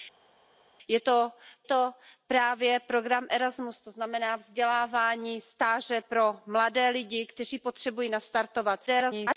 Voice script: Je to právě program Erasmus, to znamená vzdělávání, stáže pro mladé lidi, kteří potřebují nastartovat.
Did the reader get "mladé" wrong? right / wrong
right